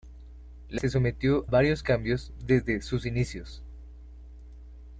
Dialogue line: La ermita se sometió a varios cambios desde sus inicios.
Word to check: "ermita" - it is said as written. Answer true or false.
false